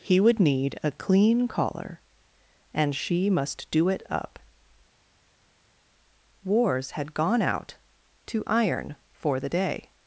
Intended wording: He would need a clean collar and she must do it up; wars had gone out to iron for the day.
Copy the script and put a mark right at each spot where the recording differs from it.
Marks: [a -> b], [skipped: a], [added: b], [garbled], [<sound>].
He would need a clean collar and she must do it up; wars had gone out to iron for the day.